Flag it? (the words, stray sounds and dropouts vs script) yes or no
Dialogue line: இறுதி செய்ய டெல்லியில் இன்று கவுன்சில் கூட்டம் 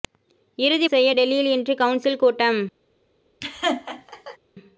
yes